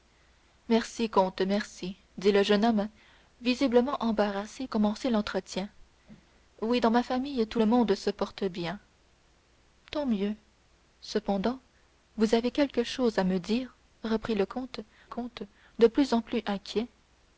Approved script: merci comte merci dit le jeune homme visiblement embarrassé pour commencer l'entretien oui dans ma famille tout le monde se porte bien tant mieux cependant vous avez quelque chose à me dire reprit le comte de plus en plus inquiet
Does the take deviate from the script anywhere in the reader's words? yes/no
yes